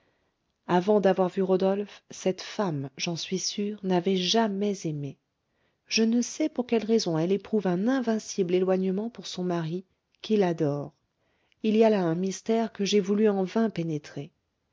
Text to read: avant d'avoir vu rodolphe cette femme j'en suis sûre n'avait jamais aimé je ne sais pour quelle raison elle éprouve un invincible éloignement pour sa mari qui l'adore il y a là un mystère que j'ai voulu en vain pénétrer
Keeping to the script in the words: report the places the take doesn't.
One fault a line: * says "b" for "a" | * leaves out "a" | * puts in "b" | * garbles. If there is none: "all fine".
* says "son" for "sa"